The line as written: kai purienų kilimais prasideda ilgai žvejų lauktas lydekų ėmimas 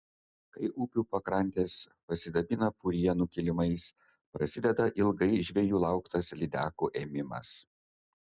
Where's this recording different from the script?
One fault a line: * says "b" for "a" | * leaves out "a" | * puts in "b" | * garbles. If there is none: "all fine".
* puts in "upių pakrantės pasidabina"